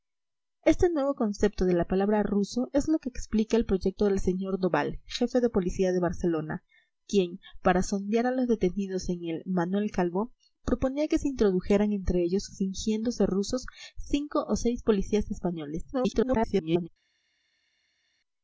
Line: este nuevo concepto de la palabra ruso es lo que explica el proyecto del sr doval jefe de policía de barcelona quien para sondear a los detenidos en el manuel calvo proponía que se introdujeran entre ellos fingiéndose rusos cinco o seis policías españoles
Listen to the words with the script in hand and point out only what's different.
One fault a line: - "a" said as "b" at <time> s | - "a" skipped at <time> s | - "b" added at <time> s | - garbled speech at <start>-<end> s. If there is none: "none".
- garbled speech at 15.9-16.9 s